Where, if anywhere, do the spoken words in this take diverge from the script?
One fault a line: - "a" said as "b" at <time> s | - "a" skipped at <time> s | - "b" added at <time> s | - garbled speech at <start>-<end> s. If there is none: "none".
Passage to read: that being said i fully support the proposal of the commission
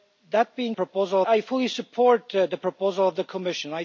- "said" said as "proposal" at 0.8 s